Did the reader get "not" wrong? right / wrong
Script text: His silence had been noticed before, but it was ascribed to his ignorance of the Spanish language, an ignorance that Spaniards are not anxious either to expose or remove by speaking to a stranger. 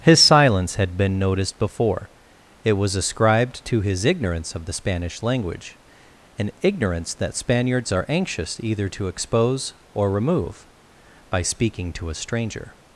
wrong